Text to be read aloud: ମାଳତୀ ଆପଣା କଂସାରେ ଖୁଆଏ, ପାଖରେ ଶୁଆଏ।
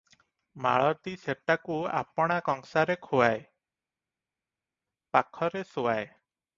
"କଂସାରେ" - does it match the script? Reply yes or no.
yes